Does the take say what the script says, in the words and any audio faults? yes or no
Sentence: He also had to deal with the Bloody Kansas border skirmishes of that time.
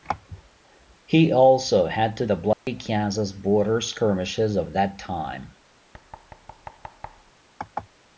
no